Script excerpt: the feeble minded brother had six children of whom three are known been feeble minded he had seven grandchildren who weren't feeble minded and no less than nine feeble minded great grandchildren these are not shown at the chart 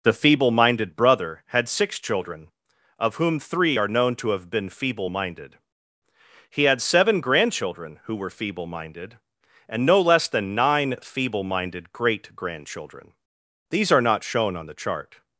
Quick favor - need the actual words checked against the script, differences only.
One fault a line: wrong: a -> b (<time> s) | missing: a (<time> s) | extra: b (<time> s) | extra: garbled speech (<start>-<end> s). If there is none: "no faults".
extra: to have (4.2 s)
wrong: weren't -> were (8.2 s)
wrong: at -> on (14.5 s)